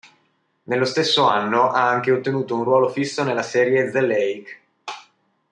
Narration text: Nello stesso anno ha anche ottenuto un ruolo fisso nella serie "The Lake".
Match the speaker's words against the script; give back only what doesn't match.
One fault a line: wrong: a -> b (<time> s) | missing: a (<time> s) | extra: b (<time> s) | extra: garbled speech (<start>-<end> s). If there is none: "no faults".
no faults